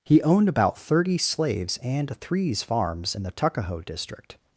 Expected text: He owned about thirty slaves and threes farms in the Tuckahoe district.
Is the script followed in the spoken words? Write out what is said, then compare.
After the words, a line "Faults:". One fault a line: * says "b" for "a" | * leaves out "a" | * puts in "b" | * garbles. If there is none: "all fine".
He owned about thirty slaves and threes farms in the Tuckahoe district.
Faults:
all fine